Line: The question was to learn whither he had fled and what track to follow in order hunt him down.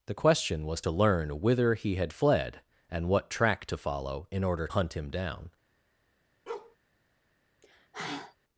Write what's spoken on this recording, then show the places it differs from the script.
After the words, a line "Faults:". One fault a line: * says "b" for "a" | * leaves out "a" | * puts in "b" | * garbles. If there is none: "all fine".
The question was to learn whither he had fled and what track to follow in order hunt him down.
Faults:
all fine